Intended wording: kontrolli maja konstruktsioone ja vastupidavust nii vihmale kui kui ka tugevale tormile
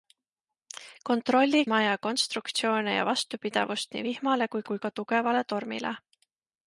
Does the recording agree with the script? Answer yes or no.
yes